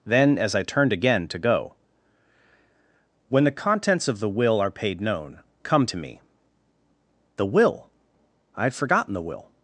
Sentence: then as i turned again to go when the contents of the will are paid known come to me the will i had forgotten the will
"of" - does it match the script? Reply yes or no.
yes